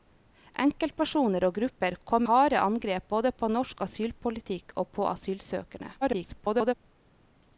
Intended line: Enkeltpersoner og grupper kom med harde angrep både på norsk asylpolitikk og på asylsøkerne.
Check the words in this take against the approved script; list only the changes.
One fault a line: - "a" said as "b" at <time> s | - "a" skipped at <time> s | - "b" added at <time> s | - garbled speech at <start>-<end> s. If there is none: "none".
- "med" skipped at 2.2 s
- garbled speech at 6.0-6.7 s